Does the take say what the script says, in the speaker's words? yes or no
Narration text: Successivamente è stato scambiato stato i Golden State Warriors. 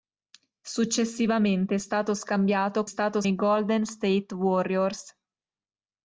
yes